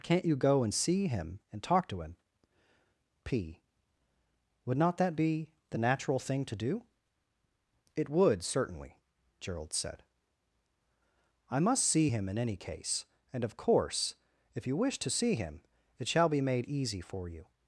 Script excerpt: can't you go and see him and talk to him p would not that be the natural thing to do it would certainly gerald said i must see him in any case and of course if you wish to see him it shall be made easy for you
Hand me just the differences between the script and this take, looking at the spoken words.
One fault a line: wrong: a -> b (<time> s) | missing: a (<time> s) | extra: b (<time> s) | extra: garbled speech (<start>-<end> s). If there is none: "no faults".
no faults